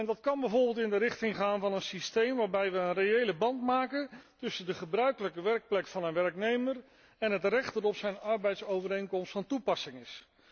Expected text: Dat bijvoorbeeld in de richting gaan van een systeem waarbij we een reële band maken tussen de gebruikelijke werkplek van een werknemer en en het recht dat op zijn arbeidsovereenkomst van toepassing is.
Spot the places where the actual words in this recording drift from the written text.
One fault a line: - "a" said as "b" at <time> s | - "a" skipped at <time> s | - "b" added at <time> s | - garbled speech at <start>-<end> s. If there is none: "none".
- "kan" added at 0.2 s
- "en" skipped at 7.3 s